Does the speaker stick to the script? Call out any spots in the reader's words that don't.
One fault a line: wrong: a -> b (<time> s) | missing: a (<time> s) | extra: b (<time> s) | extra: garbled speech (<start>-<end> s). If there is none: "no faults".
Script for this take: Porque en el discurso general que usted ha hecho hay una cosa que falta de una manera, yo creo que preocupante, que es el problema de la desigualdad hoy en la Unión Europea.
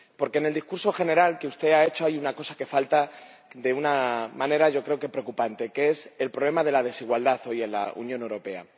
no faults